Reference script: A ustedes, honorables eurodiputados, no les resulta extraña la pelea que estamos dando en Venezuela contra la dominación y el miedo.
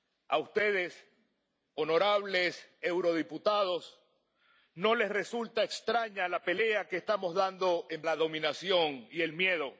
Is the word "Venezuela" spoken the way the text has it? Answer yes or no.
no